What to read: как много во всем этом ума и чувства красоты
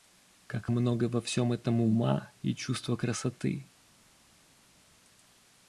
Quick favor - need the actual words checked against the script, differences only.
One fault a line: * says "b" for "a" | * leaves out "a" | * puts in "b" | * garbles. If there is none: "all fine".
all fine